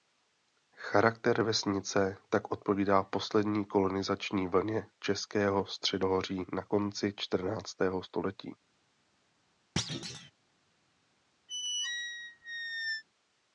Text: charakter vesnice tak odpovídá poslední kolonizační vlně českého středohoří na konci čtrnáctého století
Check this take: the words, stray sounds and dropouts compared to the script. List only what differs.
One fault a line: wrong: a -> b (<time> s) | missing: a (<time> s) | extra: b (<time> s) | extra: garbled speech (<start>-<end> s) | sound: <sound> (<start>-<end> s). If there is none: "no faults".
sound: thud (9.8-10.3 s)
sound: squeak (11.5-13.0 s)